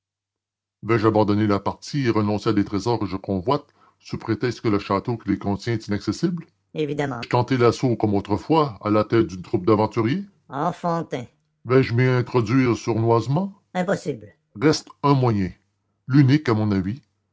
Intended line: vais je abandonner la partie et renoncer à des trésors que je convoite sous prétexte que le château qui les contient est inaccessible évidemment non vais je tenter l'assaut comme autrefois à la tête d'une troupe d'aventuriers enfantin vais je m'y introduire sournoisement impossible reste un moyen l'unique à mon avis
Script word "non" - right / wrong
wrong